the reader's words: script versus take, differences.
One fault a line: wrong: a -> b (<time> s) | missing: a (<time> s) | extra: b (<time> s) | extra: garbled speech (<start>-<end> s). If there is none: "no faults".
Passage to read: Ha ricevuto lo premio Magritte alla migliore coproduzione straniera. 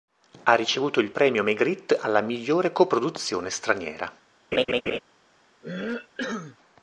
wrong: lo -> il (1.0 s)